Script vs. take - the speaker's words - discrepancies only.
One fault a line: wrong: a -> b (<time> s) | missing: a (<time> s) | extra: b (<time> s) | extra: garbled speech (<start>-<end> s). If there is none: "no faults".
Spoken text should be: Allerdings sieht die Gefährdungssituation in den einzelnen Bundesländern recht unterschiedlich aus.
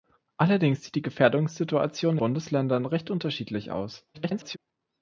missing: in den einzelnen (2.2 s)
extra: garbled speech (4.1-4.6 s)